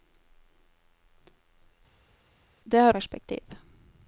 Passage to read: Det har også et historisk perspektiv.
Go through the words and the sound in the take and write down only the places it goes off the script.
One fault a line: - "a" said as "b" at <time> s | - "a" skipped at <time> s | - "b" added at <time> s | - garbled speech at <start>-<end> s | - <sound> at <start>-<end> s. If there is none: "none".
- "også et historisk" skipped at 2.9 s